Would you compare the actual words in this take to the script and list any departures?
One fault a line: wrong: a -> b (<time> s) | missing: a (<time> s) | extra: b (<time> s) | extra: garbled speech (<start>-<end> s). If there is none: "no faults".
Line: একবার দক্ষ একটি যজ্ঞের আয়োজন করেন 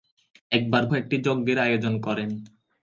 missing: দক্ষ (0.8 s)